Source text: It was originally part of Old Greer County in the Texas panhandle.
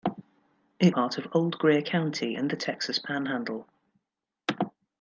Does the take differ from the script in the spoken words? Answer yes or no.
yes